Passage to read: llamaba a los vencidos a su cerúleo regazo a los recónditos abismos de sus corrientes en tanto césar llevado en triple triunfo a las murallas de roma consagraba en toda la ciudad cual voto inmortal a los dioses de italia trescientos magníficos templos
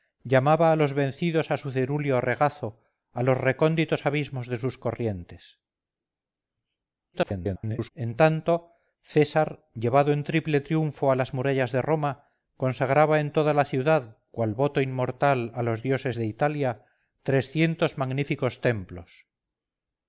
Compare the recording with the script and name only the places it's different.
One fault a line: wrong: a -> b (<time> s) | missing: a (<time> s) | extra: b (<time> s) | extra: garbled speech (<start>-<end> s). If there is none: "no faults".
extra: garbled speech (7.1-7.9 s)